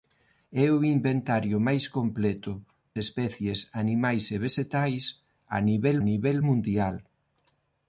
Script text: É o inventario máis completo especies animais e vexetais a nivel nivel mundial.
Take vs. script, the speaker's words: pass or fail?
pass